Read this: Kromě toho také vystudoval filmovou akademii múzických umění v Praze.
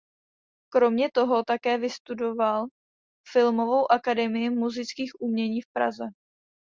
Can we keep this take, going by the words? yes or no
yes